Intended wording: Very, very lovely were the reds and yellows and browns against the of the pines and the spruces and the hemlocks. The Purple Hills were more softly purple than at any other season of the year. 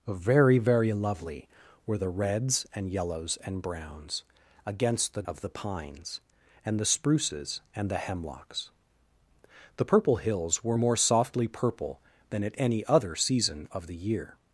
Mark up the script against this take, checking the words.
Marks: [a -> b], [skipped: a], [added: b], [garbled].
Very, very lovely were the reds and yellows and browns against the of the pines and the spruces and the hemlocks. The Purple Hills were more softly purple than at any other season of the year.